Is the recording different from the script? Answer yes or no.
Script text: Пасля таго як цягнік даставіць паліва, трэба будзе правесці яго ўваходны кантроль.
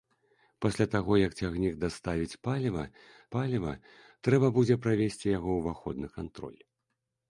yes